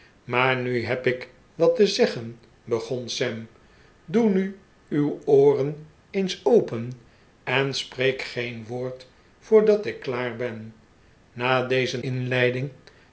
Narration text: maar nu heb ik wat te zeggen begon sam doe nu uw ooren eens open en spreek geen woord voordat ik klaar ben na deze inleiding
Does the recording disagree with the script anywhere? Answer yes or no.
no